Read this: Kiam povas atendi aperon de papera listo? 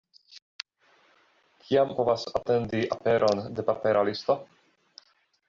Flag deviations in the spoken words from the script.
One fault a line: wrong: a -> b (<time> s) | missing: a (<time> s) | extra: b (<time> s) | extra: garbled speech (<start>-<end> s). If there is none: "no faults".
no faults